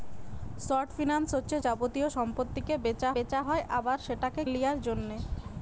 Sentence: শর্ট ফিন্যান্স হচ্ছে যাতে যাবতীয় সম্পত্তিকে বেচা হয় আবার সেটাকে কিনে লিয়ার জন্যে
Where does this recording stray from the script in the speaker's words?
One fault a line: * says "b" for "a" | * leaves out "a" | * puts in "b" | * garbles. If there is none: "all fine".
* leaves out "যাতে"
* puts in "বেচা"
* leaves out "কিনে"